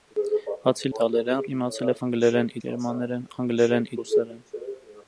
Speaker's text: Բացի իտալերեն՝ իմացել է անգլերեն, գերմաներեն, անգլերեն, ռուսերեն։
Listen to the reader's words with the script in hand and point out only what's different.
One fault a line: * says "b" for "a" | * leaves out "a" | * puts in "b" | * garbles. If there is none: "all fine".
all fine